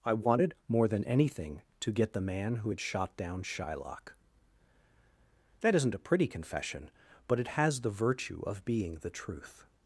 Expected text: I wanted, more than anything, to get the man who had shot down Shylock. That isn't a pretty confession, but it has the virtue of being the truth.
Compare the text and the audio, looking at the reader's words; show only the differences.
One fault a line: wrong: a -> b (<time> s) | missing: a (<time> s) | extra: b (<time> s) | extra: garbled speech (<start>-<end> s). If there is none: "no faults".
no faults